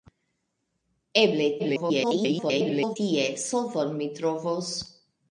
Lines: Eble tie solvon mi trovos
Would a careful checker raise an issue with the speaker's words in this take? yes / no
yes